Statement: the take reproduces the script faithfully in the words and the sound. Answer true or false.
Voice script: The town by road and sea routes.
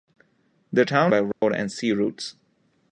false